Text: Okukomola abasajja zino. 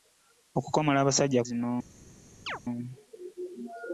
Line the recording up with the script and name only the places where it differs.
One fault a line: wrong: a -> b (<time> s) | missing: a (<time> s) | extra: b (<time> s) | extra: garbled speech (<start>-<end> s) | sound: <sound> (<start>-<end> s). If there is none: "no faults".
sound: chirp (2.5-2.6 s)